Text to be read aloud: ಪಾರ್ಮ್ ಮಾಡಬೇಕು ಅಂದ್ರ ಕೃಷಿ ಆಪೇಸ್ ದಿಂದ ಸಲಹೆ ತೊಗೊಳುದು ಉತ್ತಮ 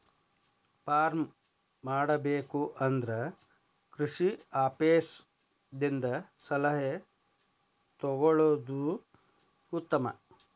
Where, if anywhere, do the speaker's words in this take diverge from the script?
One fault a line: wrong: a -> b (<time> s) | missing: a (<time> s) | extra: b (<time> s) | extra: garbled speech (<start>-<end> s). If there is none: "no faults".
no faults